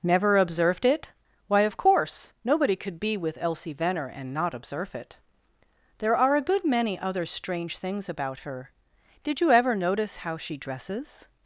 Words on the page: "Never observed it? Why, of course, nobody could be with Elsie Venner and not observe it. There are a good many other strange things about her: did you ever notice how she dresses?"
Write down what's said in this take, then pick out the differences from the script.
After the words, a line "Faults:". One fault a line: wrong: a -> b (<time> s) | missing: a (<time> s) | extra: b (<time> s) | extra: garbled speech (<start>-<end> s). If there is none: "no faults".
"Never observed it? Why, of course, nobody could be with Elsie Venner and not observe it. There are a good many other strange things about her: did you ever notice how she dresses?"
Faults:
no faults